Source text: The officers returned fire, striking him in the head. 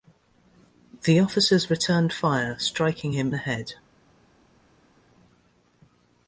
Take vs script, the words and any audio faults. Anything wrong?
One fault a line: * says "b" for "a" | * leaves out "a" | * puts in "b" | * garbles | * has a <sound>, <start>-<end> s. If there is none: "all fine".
* leaves out "in"